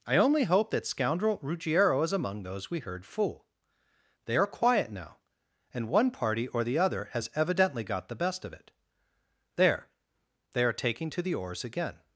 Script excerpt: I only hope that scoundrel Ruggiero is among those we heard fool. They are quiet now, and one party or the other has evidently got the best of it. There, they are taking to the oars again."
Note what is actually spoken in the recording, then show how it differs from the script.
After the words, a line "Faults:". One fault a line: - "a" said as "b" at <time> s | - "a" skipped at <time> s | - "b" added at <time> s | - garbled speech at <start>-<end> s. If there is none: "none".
I only hope that scoundrel Ruggiero is among those we heard fool. They are quiet now, and one party or the other has evidently got the best of it. There, they are taking to the oars again."
Faults:
none